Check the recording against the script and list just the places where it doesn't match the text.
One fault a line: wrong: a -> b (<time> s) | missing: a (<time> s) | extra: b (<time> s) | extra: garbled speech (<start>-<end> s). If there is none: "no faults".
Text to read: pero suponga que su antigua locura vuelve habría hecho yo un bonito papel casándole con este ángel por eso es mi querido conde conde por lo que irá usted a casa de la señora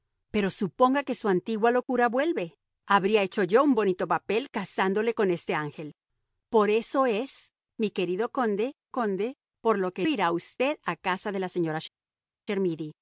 no faults